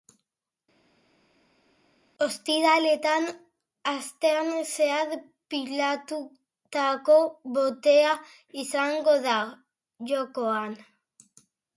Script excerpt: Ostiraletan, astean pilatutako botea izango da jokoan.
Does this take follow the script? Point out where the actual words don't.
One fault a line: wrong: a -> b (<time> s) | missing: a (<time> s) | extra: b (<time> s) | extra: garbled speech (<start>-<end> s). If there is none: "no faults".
extra: zehar (4.7 s)